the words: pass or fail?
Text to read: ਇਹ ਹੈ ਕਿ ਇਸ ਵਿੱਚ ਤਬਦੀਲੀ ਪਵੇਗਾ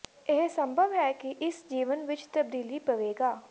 fail